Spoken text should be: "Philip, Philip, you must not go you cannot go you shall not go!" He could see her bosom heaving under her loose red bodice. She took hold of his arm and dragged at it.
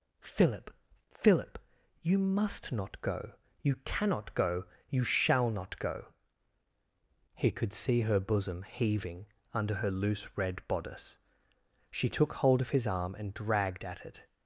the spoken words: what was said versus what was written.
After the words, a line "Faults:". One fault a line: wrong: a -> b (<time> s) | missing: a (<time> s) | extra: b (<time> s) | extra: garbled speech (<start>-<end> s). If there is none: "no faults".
"Philip, Philip, you must not go you cannot go you shall not go!" He could see her bosom heaving under her loose red bodice. She took hold of his arm and dragged at it.
Faults:
no faults